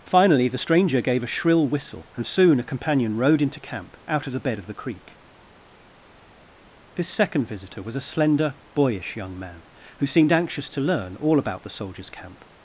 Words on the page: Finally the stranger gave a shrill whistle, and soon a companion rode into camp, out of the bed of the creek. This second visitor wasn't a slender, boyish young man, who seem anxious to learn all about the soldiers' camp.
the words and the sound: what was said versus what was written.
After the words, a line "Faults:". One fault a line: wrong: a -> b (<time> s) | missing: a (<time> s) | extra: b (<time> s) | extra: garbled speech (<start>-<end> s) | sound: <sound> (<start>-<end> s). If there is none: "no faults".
Finally the stranger gave a shrill whistle, and soon a companion rode into camp, out of the bed of the creek. This second visitor was a slender, boyish young man, who seemed anxious to learn all about the soldiers' camp.
Faults:
wrong: wasn't -> was (7.8 s)
wrong: seem -> seemed (10.1 s)